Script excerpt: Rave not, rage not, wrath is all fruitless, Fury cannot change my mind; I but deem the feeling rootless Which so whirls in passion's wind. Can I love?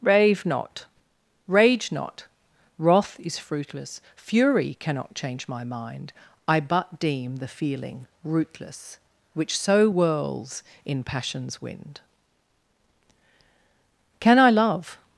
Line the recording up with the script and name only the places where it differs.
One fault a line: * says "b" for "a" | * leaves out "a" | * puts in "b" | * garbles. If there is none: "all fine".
* leaves out "all"